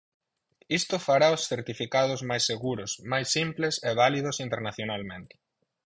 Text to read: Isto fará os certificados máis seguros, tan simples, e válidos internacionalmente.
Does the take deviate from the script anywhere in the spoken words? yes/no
yes